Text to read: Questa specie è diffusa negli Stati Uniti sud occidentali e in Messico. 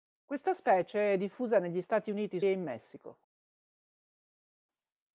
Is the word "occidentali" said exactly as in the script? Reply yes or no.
no